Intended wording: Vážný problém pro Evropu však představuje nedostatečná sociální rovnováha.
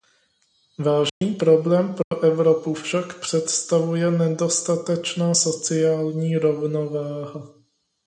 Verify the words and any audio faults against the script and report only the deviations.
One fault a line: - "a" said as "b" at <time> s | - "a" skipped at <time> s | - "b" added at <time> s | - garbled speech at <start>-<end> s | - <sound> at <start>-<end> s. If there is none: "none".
- dropout at 1.1-1.2 s
- dropout at 2.0-2.1 s